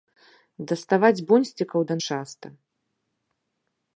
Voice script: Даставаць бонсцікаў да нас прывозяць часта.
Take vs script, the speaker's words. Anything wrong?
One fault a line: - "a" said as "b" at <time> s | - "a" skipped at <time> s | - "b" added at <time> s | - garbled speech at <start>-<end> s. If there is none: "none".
- "нас прывозяць" skipped at 2.0 s